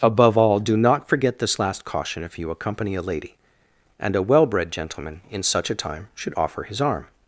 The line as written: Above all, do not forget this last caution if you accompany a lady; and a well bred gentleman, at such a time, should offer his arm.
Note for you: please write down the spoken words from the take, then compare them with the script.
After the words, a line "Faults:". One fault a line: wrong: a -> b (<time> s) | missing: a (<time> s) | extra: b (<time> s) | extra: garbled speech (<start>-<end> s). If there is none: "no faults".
Above all, do not forget this last caution if you accompany a lady; and a well bred gentleman, in such a time, should offer his arm.
Faults:
wrong: at -> in (5.3 s)